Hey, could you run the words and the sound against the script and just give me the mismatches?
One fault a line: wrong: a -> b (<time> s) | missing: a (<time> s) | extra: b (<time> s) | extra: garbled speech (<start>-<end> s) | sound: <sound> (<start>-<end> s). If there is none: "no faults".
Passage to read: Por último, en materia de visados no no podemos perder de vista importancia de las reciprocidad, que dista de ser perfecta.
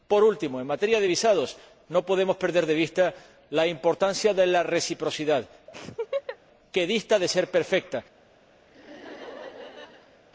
missing: no (2.1 s)
extra: la (3.5 s)
wrong: las -> la (4.5 s)
sound: laugh (5.7-6.4 s)
sound: laugh (8.7-10.2 s)